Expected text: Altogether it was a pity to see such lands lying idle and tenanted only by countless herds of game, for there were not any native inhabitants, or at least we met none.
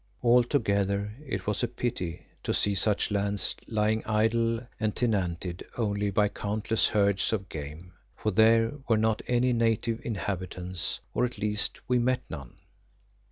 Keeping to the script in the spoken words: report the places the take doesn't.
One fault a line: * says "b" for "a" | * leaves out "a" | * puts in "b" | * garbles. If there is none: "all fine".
all fine